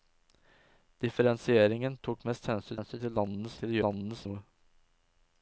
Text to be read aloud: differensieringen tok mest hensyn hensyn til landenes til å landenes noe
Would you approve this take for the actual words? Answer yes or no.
yes